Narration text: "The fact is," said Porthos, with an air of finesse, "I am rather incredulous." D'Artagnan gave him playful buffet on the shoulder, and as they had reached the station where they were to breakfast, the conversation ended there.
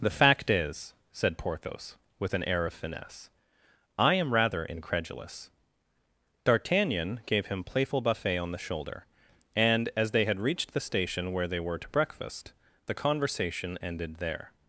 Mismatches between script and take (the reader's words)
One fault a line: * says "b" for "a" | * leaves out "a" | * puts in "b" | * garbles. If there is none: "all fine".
all fine